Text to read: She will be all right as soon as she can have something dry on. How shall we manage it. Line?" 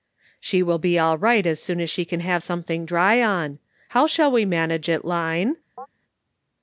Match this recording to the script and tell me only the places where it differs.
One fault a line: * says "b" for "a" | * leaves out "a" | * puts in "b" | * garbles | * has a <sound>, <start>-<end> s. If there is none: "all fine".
* has a chirp, 5.8-5.9 s